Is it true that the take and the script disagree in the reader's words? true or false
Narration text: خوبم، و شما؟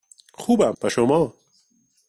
false